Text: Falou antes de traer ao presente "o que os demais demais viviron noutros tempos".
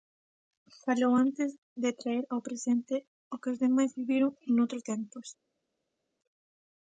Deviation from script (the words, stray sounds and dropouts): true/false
true